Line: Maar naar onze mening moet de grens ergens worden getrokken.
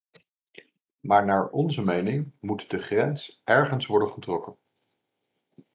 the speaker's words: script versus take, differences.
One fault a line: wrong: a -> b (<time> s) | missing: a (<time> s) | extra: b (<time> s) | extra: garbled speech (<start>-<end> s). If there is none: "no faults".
no faults